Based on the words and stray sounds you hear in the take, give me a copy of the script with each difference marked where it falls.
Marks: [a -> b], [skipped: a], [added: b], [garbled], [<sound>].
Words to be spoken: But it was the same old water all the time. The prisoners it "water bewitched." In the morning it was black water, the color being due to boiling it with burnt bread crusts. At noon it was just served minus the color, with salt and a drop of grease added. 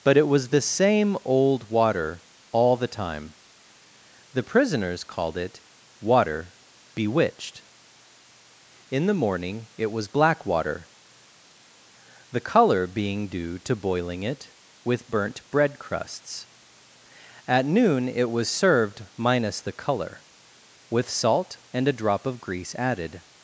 But it was the same old water all the time. The prisoners [added: called] it "water bewitched." In the morning it was black water, the color being due to boiling it with burnt bread crusts. At noon it was [skipped: just] served minus the color, with salt and a drop of grease added.